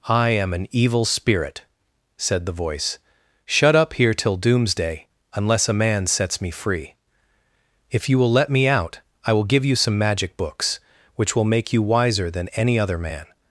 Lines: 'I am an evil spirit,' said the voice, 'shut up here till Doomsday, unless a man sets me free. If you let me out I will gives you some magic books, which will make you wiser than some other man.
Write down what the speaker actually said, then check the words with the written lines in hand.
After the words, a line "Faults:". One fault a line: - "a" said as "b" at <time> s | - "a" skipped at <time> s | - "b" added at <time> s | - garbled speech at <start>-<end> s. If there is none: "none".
'I am an evil spirit,' said the voice, 'shut up here till Doomsday, unless a man sets me free. If you will let me out I will give you some magic books, which will make you wiser than any other man.
Faults:
- "will" added at 8.2 s
- "gives" said as "give" at 9.4 s
- "some" said as "any" at 12.5 s